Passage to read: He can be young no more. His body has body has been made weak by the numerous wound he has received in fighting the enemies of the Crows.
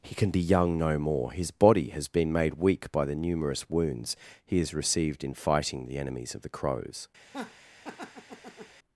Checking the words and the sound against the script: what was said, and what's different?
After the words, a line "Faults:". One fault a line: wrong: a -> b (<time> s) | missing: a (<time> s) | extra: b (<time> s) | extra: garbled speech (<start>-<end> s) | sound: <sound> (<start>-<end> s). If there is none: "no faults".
He can be young no more. His body has been made weak by the numerous wounds he has received in fighting the enemies of the Crows.
Faults:
missing: body has (2.1 s)
wrong: wound -> wounds (3.7 s)
sound: laugh (7.2-8.8 s)